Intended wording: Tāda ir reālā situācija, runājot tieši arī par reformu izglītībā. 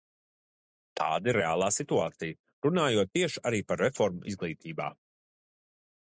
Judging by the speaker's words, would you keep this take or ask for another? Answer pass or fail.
pass